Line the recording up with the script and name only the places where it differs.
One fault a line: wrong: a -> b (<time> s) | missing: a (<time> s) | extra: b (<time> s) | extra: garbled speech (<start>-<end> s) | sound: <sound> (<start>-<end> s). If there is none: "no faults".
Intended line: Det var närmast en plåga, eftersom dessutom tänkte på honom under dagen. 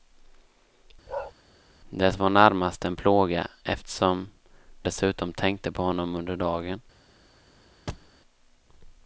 sound: bark (1.1-1.3 s)
sound: thud (7.9-8.1 s)